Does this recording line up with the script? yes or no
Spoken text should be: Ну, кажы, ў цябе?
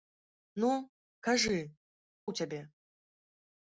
yes